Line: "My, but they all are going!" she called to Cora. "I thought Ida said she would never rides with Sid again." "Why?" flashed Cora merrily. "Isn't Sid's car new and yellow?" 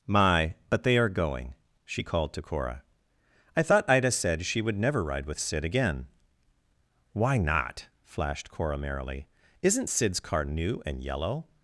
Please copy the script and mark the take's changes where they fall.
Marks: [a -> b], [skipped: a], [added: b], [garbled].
"My, but they [skipped: all] are going!" she called to Cora. "I thought Ida said she would never [rides -> ride] with Sid again." "Why?" [added: not] flashed Cora merrily. "Isn't Sid's car new and yellow?"